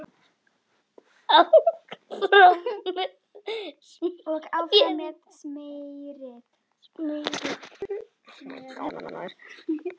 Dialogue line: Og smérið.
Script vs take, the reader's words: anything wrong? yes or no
yes